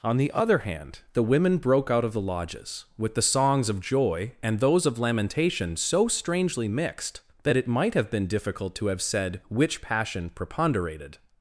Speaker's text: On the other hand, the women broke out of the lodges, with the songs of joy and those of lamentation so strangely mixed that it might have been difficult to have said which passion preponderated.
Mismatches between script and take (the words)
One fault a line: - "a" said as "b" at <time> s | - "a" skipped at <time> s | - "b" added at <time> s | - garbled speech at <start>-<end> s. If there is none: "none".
none